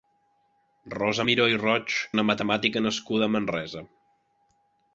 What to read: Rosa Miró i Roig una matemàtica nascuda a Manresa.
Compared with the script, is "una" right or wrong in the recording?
right